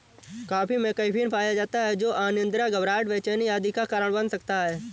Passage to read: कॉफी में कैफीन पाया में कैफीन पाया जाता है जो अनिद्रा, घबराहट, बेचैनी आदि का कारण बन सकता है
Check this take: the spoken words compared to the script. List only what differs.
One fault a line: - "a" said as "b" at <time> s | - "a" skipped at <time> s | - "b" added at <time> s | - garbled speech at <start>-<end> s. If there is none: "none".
- "में कैफीन पाया" skipped at 1.5 s